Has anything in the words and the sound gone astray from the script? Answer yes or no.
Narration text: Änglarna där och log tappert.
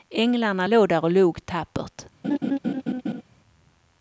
yes